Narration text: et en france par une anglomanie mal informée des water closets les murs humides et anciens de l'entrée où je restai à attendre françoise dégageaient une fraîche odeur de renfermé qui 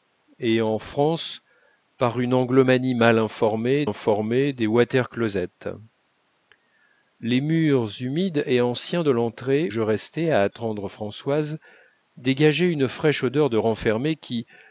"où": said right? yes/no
no